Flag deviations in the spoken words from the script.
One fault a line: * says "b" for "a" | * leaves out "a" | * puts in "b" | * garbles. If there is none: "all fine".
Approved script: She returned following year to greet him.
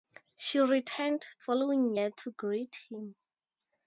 all fine